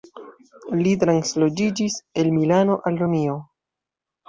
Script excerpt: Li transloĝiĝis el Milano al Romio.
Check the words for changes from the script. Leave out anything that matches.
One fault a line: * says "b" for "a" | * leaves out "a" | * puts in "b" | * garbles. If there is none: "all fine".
all fine